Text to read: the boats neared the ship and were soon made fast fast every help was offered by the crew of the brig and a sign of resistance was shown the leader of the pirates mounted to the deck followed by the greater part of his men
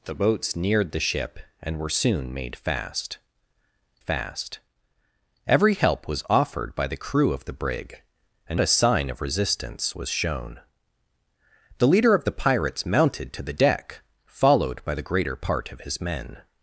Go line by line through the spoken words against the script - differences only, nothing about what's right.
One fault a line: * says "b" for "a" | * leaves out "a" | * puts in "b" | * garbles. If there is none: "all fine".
all fine